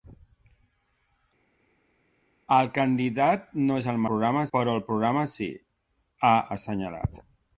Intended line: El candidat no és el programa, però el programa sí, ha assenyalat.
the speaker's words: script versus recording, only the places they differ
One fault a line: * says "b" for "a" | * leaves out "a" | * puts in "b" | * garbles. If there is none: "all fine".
all fine